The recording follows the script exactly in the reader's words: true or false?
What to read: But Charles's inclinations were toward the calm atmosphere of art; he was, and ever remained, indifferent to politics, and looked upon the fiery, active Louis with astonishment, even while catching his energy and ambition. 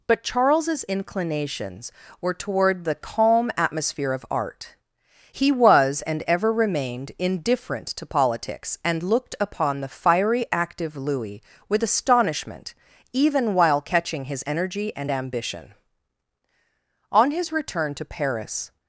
false